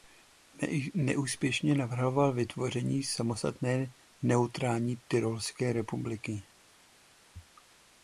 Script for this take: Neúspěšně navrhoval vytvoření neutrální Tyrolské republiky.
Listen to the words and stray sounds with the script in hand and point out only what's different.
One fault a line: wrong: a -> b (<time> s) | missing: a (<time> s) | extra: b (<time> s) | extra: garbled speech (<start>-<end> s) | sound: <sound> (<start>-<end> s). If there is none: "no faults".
extra: samostatné (3.0 s)